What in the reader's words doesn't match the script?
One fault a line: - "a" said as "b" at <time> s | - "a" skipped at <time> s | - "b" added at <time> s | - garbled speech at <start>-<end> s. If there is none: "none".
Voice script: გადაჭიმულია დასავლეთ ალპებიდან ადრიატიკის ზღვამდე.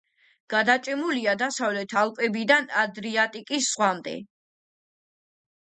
none